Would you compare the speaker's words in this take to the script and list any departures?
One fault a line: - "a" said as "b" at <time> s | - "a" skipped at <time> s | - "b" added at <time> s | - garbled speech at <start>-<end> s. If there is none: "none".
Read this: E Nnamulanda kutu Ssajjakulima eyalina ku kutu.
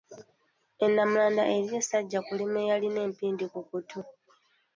- "kutu" said as "eriyo" at 1.5 s
- "empindi" added at 3.1 s